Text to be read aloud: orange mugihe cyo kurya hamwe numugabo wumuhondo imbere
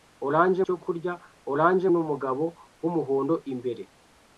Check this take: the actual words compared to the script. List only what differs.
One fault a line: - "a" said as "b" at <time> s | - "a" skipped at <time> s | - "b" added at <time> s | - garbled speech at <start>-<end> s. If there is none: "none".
- "mugihe" skipped at 0.6 s
- "hamwe" said as "orange" at 1.5 s